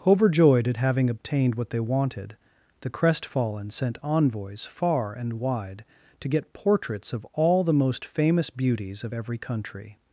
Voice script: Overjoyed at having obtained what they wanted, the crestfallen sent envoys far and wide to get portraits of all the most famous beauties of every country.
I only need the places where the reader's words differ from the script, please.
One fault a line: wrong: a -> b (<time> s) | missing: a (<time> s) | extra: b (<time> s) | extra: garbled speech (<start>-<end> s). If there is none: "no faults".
no faults